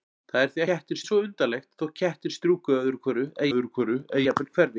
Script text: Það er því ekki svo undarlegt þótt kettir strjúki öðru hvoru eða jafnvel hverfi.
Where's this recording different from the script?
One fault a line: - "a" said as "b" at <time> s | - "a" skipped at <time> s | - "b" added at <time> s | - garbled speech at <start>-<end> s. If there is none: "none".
- "ekki" said as "kettir" at 0.7 s
- "öðru hvoru eða" added at 3.5 s